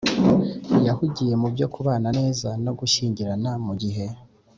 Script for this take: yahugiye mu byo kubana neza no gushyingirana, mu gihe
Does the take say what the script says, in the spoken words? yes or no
yes